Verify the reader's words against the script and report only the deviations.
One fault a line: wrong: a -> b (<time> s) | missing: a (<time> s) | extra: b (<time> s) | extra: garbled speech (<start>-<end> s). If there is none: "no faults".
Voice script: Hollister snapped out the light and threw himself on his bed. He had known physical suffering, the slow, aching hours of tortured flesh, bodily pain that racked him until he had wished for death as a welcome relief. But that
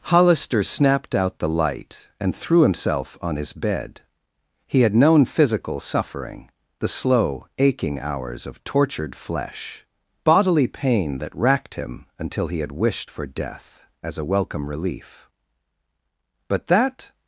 no faults